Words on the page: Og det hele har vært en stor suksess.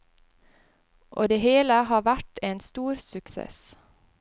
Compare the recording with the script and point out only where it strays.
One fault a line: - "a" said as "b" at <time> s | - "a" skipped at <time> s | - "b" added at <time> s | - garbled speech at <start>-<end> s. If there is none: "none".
none